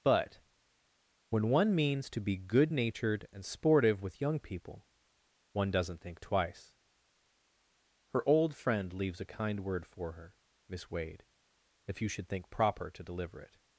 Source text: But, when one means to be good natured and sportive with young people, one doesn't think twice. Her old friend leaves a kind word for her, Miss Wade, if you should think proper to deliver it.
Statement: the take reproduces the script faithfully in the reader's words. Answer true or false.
true